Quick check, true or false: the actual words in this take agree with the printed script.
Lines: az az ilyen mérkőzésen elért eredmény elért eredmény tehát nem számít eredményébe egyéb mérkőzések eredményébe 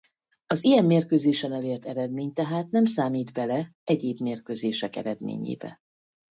false